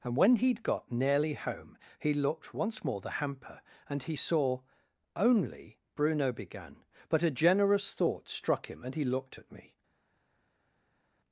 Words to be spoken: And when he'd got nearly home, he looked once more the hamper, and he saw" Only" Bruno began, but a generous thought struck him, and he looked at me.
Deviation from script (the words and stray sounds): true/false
false